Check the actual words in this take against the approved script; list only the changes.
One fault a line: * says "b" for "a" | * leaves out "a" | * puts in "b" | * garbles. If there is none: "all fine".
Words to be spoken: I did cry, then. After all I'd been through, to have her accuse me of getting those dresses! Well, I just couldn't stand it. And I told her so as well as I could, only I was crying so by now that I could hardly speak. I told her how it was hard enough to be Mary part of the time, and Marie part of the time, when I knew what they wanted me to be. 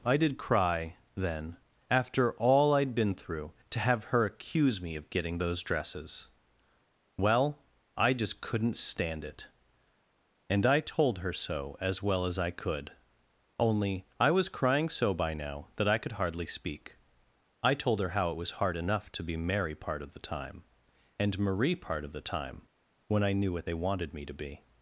all fine